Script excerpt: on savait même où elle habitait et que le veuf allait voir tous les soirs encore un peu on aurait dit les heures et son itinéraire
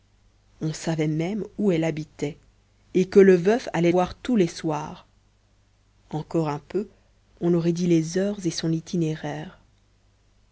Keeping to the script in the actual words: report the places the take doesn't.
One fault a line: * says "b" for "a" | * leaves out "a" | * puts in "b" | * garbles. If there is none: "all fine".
all fine